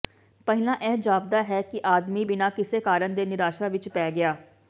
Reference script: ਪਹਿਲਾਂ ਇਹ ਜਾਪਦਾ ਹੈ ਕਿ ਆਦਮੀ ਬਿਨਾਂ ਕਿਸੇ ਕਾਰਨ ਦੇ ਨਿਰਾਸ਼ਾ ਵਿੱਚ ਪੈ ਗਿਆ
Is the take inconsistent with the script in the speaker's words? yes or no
no